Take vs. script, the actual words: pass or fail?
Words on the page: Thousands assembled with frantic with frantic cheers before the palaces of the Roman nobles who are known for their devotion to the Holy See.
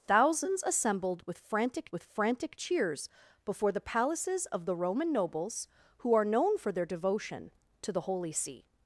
pass